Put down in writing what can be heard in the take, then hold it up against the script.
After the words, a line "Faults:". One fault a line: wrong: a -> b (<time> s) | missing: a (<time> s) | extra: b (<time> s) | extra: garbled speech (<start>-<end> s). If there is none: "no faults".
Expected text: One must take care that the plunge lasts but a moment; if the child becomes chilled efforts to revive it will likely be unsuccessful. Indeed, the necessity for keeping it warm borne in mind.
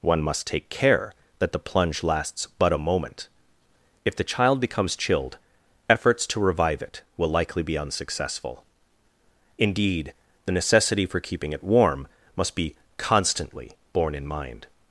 One must take care that the plunge lasts but a moment; if the child becomes chilled efforts to revive it will likely be unsuccessful. Indeed, the necessity for keeping it warm must be constantly borne in mind.
Faults:
extra: must be constantly (12.3 s)